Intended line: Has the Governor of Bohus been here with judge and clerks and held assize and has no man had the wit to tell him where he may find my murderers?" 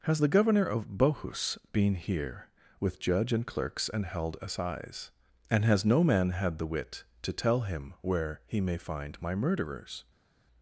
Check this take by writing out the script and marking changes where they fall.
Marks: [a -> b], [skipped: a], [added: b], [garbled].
Has the Governor of Bohus been here with judge and clerks and held assize and has no man had the wit to tell him where he may find my murderers?"